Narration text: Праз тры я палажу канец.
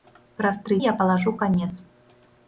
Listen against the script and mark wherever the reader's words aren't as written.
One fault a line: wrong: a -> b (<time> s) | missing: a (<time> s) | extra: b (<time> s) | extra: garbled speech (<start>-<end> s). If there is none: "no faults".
no faults